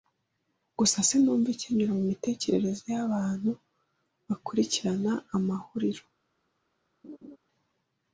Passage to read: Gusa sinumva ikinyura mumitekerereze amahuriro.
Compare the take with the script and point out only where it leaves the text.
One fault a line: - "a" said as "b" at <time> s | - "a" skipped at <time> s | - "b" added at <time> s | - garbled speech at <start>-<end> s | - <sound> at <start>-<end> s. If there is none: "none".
- "yabantu bakurikirana" added at 3.0 s
- laugh at 7.0-7.4 s